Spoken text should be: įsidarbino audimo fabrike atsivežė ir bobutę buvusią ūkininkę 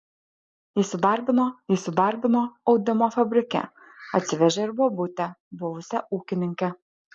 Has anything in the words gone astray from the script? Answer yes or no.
yes